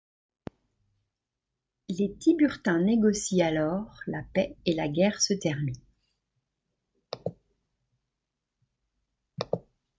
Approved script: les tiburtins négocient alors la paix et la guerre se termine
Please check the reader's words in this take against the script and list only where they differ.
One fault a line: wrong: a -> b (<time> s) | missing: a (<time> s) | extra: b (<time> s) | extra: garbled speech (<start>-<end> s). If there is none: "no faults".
no faults